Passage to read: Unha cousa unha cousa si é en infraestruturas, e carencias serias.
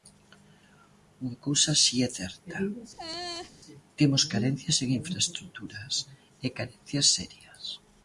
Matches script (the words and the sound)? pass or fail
fail